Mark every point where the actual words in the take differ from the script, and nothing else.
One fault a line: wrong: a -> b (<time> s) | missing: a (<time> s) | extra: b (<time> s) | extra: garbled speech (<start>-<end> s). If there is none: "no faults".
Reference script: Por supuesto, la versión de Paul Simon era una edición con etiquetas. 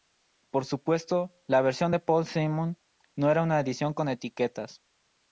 extra: no (3.2 s)